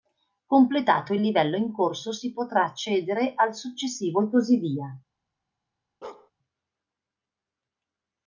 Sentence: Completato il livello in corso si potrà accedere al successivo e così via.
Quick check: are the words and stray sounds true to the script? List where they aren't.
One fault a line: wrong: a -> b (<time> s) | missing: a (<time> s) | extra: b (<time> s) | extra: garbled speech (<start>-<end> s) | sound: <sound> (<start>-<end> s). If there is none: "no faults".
sound: bark (6.0-6.3 s)